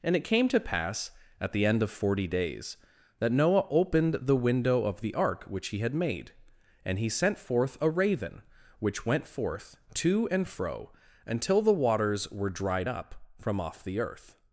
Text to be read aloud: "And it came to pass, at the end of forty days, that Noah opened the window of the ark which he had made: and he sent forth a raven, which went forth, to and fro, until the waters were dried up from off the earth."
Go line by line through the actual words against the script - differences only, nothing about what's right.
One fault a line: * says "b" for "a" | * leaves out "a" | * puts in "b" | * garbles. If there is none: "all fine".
all fine